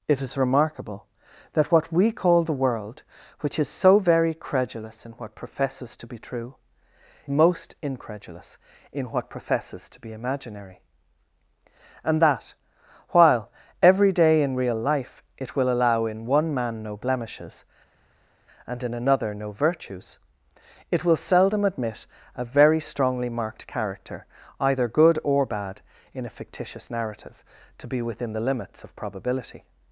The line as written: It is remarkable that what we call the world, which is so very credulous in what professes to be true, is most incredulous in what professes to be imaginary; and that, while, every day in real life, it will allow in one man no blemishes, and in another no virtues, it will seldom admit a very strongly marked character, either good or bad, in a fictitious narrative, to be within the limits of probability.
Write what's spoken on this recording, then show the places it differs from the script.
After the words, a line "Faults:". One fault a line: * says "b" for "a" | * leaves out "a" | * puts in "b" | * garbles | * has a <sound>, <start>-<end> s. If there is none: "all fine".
It is remarkable that what we call the world, which is so very credulous in what professes to be true, most incredulous in what professes to be imaginary; and that, while, every day in real life, it will allow in one man no blemishes, and in another no virtues, it will seldom admit a very strongly marked character, either good or bad, in a fictitious narrative, to be within the limits of probability.
Faults:
* leaves out "is"